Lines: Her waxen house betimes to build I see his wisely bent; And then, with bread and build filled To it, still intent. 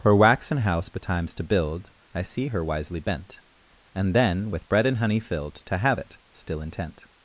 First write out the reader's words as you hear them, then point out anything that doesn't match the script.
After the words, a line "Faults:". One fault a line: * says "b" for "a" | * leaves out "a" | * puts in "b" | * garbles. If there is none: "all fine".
Her waxen house betimes to build I see her wisely bent; And then, with bread and honey filled To have it, still intent.
Faults:
* says "her" for "his"
* says "honey" for "build"
* puts in "have"